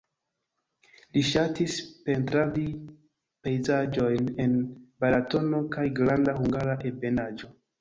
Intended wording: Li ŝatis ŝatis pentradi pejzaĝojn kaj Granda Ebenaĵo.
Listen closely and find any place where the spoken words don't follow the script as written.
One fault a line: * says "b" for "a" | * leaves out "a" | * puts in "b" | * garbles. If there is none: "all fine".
* leaves out "ŝatis"
* puts in "en Balatono"
* puts in "Hungara"